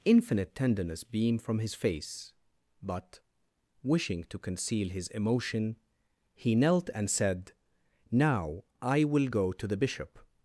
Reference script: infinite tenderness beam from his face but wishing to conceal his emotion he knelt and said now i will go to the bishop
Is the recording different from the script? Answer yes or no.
no